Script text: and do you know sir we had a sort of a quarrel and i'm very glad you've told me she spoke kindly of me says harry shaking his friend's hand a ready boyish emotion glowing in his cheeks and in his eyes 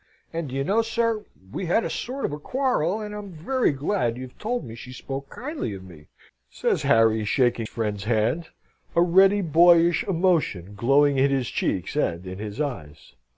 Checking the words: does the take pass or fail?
fail